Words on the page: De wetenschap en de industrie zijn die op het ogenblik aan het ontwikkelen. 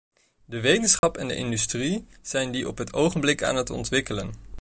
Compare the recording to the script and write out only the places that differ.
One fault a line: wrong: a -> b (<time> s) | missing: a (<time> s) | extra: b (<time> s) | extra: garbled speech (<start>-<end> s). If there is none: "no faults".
no faults